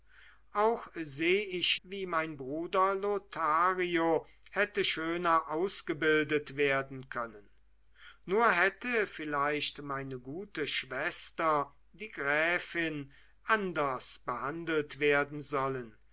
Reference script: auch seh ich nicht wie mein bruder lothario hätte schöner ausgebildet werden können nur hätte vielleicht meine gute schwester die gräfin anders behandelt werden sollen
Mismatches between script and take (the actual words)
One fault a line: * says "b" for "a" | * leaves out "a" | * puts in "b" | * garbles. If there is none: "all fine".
* leaves out "nicht"